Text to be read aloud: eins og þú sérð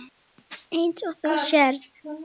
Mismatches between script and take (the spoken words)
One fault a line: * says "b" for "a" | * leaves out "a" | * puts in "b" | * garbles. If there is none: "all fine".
all fine